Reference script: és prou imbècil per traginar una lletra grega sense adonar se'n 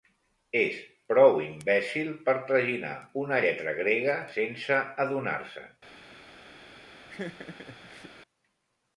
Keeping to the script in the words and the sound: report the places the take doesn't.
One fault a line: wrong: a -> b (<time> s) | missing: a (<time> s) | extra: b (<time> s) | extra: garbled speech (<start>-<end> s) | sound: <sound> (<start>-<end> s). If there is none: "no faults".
sound: laugh (7.1-8.1 s)